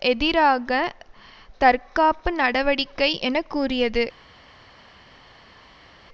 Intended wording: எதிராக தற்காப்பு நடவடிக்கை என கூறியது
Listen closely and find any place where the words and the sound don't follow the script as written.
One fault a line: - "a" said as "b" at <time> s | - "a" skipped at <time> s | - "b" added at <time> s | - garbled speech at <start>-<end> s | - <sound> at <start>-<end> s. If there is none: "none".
none